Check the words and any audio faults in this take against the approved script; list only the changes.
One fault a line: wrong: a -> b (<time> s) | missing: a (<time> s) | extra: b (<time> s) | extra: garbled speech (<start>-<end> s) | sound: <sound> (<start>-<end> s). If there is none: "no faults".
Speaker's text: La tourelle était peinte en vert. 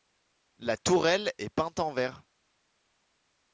wrong: était -> est (1.4 s)